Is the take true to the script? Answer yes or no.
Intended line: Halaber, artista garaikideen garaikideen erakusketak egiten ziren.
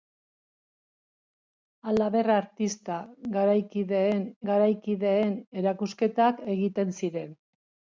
yes